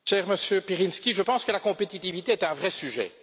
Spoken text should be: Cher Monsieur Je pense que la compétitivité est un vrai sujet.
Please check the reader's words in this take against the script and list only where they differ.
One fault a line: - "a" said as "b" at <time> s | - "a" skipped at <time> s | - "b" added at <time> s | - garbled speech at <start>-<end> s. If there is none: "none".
- "Pirinski" added at 0.6 s